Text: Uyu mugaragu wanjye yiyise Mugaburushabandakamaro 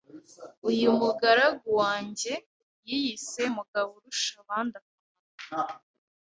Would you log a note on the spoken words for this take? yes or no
no